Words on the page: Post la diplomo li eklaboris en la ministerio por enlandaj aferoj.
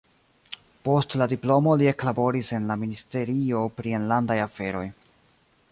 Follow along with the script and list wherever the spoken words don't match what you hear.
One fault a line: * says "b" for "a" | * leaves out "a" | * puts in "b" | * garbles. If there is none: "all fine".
* says "pri" for "por"